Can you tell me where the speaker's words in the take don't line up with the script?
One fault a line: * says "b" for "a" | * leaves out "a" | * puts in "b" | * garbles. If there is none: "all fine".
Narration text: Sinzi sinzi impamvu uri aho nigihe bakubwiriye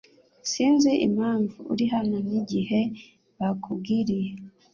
* leaves out "sinzi"
* says "hano" for "aho"